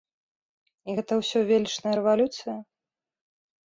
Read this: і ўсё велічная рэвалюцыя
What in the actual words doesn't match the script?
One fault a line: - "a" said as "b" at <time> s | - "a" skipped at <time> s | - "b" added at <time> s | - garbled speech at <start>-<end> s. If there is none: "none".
- "гэта" added at 1.0 s